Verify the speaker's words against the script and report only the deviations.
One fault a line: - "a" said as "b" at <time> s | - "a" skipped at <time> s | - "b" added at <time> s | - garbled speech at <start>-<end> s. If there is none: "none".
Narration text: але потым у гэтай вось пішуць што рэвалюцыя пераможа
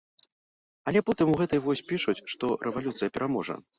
none